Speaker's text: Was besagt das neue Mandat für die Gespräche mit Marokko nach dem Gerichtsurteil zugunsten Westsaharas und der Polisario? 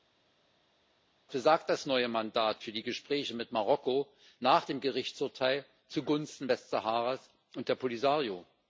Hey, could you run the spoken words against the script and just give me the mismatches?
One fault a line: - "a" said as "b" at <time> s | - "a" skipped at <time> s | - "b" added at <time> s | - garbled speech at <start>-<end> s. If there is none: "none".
none